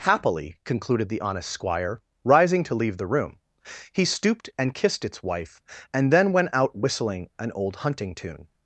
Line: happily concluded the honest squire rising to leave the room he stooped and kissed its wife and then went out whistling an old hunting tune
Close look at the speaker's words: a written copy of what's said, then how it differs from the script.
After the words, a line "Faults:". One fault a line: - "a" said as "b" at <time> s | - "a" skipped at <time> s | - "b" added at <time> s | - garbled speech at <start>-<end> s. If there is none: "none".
happily concluded the honest squire rising to leave the room he stooped and kissed its wife and then went out whistling an old hunting tune
Faults:
none